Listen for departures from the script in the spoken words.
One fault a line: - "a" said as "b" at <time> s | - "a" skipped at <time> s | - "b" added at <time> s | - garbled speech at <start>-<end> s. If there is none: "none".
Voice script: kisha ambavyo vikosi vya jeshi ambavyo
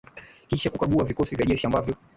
- "ambavyo" said as "kukagua" at 0.7 s